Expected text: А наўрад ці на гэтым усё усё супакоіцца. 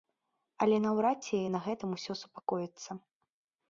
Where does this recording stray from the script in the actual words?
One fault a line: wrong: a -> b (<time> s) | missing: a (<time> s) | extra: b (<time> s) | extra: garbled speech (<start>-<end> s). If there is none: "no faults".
wrong: А -> Але (0.7 s)
missing: усё (2.1 s)